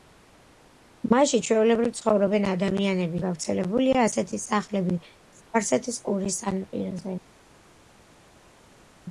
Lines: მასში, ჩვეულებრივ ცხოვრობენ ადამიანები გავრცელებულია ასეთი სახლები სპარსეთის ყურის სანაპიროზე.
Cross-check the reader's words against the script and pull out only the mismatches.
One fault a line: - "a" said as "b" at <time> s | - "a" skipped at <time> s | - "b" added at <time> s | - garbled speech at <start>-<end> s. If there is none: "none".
none